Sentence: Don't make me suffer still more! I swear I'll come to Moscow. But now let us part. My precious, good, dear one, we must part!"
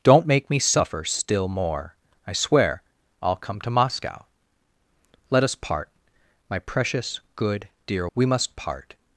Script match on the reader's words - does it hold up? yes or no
no